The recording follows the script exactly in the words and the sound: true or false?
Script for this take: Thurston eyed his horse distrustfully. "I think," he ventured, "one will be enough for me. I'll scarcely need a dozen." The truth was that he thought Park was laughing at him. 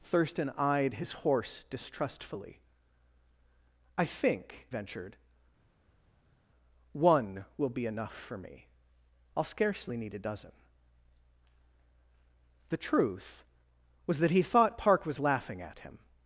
false